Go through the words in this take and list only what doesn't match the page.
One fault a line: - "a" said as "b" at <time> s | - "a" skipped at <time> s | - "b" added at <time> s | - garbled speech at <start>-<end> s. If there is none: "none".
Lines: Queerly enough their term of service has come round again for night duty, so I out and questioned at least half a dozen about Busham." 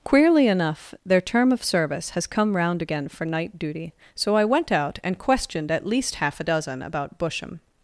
- "went" added at 4.5 s